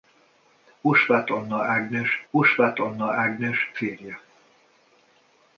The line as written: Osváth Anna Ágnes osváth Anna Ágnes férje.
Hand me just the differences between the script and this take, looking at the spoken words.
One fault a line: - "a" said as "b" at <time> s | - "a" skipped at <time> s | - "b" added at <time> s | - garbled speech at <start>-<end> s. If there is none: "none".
none